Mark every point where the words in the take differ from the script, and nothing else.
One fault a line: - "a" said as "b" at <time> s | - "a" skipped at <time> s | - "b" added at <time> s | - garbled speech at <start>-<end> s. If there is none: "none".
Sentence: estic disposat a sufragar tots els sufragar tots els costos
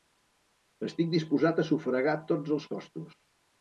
- "sufragar tots els" skipped at 2.7 s